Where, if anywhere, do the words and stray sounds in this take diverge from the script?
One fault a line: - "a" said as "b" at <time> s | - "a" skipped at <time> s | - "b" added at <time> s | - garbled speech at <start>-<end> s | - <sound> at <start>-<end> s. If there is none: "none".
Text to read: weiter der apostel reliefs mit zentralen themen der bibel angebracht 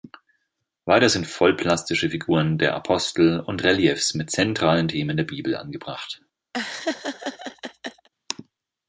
- "sind vollplastische figuren" added at 1.1 s
- "und" added at 3.4 s
- laugh at 6.5-8.1 s